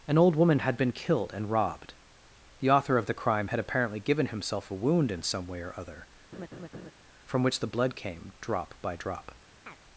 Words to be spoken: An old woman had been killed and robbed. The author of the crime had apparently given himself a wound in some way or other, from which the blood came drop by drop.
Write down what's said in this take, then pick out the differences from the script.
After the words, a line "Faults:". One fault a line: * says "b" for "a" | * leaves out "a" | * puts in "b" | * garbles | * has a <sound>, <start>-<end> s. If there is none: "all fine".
An old woman had been killed and robbed. The author of the crime had apparently given himself a wound in some way or other, from which the blood came drop by drop.
Faults:
* has a laugh, 6.3-6.9 s
* has a chirp, 9.7-9.8 s